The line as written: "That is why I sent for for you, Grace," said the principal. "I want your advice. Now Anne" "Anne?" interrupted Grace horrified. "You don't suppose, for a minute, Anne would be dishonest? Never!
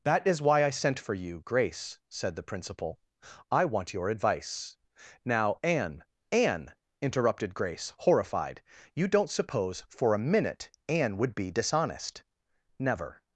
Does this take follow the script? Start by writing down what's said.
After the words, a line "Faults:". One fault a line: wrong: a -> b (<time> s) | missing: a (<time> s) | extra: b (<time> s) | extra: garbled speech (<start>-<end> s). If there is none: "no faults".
"That is why I sent for you, Grace," said the principal. "I want your advice. Now Anne" "Anne?" interrupted Grace horrified. "You don't suppose, for a minute, Anne would be dishonest? Never!
Faults:
missing: for (1.1 s)